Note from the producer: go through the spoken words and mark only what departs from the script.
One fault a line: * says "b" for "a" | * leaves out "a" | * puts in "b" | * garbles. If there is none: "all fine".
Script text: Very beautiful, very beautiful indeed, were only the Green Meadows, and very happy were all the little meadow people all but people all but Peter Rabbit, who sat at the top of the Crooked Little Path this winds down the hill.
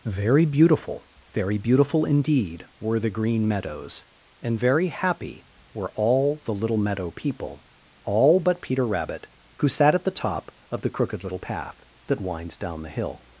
* leaves out "only"
* leaves out "people all but"
* says "that" for "this"